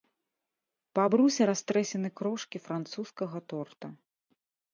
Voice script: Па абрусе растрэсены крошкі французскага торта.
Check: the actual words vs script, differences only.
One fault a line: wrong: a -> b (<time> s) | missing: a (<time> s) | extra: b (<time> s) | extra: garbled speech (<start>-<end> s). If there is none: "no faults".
no faults